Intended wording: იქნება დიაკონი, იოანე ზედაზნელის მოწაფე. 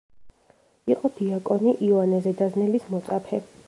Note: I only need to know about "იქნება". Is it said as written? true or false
false